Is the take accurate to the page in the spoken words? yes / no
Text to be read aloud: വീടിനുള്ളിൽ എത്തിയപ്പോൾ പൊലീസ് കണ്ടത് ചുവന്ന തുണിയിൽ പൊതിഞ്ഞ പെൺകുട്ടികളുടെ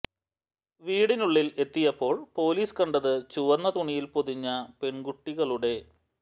yes